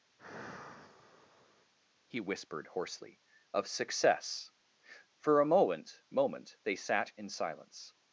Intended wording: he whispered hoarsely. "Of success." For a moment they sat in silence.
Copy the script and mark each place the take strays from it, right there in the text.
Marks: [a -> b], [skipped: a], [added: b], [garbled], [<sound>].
[sigh] he whispered hoarsely. "Of success." For a moment [added: moment] they sat in silence.